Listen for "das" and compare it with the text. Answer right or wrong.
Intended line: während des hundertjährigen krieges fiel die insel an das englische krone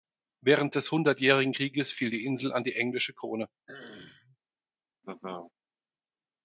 wrong